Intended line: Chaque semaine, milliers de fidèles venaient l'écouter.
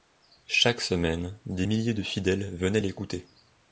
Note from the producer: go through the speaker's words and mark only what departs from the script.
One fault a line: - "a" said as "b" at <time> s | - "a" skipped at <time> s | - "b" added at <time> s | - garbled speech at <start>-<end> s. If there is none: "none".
- "des" added at 1.4 s